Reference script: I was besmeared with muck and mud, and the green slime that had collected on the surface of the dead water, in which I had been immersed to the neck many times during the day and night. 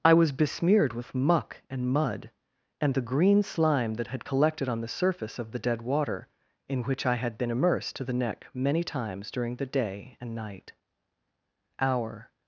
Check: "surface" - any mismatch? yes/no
no